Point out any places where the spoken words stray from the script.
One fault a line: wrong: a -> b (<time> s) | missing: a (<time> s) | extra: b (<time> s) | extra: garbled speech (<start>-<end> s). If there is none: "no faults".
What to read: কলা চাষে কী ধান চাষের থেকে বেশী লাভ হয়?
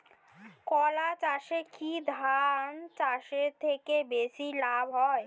no faults